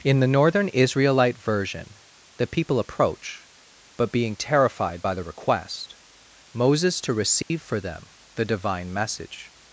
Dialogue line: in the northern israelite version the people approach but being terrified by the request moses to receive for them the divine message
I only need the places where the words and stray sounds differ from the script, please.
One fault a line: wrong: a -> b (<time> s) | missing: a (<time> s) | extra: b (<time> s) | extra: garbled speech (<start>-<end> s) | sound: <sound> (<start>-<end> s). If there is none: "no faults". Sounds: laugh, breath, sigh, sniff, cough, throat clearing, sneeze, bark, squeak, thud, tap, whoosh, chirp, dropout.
sound: dropout (7.4-7.5 s)